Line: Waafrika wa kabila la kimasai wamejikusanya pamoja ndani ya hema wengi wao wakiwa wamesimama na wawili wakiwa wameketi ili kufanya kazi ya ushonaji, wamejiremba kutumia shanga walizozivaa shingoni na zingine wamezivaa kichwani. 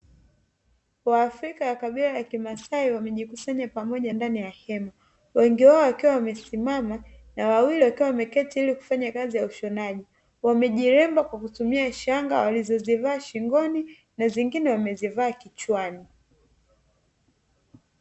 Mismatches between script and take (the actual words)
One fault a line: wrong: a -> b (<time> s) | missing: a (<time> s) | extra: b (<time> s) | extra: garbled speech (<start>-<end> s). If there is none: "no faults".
extra: kwa (11.2 s)